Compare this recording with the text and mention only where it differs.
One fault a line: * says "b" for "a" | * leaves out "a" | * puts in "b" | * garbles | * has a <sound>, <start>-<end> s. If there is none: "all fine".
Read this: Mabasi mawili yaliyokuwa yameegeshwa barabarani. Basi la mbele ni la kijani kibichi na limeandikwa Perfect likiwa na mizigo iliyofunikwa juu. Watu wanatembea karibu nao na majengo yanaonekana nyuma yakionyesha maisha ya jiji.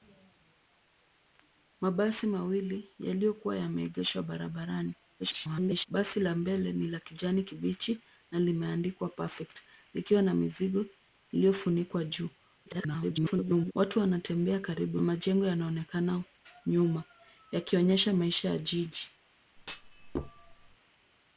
* garbles
* garbles
* leaves out "nao na"
* has a thud, 19.6-20.8 s